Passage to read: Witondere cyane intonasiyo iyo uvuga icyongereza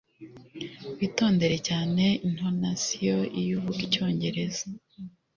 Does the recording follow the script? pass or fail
pass